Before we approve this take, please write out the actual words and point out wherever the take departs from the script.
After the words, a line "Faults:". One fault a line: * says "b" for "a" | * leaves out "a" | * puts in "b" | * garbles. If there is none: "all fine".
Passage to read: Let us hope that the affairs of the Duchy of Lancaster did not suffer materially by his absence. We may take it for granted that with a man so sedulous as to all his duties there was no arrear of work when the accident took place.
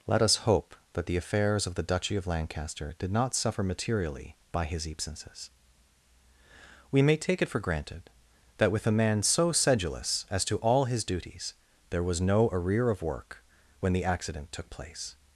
Let us hope that the affairs of the Duchy of Lancaster did not suffer materially by his absences. We may take it for granted that with a man so sedulous as to all his duties there was no arrear of work when the accident took place.
Faults:
* says "absences" for "absence"